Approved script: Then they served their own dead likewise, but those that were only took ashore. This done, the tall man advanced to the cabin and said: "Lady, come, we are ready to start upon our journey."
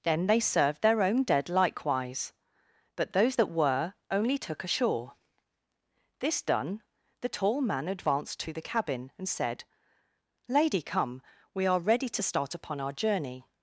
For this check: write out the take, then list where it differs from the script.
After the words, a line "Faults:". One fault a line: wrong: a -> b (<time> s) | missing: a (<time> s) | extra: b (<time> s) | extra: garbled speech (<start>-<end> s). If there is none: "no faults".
Then they served their own dead likewise, but those that were only took ashore. This done, the tall man advanced to the cabin and said: "Lady, come, we are ready to start upon our journey."
Faults:
no faults